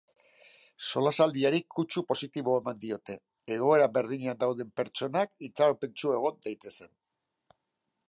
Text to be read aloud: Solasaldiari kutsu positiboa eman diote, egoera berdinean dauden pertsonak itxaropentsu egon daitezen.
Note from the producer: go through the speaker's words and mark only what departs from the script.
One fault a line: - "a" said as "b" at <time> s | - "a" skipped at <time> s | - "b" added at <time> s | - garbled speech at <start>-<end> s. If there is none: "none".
none